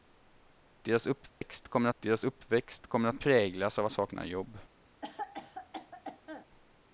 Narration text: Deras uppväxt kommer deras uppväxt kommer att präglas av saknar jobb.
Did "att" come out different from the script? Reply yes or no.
no